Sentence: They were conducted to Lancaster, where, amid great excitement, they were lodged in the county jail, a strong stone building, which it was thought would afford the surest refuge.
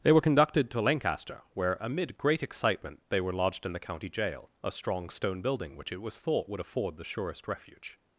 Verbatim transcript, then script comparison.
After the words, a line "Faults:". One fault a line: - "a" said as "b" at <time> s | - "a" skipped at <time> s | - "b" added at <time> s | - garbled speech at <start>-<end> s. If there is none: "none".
They were conducted to Lancaster, where, amid great excitement, they were lodged in the county jail, a strong stone building, which it was thought would afford the surest refuge.
Faults:
none